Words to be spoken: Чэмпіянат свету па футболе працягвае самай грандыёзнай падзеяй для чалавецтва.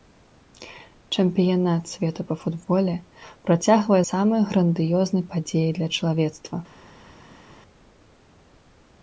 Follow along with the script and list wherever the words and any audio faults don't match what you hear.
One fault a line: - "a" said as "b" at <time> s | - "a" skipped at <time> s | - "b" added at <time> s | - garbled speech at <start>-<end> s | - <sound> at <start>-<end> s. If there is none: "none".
none